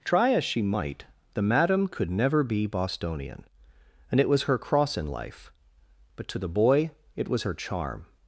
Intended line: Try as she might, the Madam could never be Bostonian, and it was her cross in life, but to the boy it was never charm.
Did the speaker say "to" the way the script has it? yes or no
yes